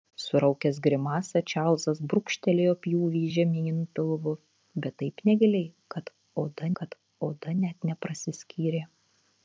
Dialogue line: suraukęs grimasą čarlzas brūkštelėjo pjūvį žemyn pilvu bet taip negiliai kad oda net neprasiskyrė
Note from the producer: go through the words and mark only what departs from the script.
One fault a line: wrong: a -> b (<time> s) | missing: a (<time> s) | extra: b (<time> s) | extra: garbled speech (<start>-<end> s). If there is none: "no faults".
extra: kad oda (6.8 s)